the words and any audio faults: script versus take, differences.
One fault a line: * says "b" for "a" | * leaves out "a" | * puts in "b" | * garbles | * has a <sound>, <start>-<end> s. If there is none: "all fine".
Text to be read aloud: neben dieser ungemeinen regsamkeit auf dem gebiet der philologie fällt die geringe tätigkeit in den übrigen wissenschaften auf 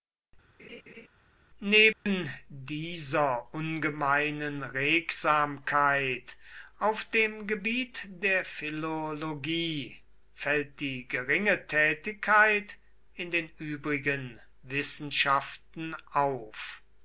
* has a laugh, 0.6-1.1 s
* has a dropout, 1.9-2.1 s